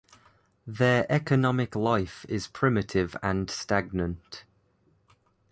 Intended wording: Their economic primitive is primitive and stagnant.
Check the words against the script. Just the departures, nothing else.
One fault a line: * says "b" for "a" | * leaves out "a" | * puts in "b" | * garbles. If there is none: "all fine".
* says "life" for "primitive"